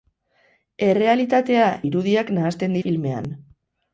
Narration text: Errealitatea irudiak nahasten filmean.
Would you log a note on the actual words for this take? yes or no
no